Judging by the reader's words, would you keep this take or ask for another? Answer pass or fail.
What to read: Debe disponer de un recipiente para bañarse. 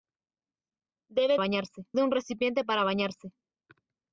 fail